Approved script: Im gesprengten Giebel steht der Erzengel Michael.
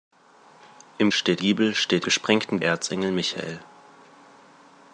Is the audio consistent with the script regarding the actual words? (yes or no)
no